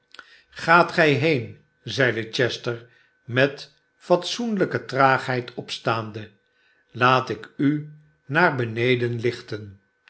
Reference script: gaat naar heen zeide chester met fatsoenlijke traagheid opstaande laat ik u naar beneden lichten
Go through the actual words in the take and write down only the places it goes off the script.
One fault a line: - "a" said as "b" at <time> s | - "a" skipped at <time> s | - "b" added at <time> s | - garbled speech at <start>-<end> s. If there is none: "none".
- "naar" said as "gij" at 0.9 s